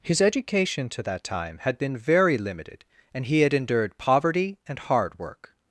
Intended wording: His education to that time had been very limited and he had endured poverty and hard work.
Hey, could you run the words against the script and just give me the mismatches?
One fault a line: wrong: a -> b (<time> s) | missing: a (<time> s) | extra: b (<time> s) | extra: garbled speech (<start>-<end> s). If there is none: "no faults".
no faults